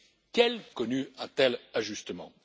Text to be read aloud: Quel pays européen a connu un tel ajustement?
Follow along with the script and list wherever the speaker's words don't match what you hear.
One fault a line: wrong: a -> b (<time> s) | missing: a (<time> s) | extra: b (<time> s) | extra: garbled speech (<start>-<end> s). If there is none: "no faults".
missing: pays européen a (0.6 s)